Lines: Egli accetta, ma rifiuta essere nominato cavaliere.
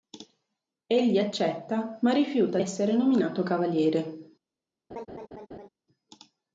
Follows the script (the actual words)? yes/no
yes